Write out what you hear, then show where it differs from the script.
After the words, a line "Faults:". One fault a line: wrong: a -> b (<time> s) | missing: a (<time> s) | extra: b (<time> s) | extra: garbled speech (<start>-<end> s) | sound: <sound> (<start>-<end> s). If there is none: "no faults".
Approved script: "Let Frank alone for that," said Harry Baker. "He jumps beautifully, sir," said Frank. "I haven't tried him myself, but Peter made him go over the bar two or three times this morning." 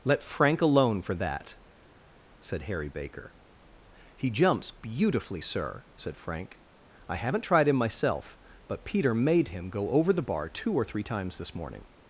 "Let Frank alone for that," said Harry Baker. "He jumps beautifully, sir," said Frank. "I haven't tried him myself, but Peter made him go over the bar two or three times this morning."
Faults:
no faults